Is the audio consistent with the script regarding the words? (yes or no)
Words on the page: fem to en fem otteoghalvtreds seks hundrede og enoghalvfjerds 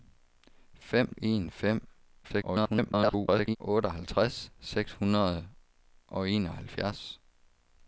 no